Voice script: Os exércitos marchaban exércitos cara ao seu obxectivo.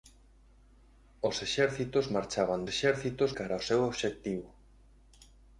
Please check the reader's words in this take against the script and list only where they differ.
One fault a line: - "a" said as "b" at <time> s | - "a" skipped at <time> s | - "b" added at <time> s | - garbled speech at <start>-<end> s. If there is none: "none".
none